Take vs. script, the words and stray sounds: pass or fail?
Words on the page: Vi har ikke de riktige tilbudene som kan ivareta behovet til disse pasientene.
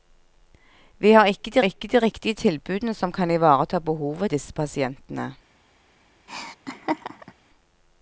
fail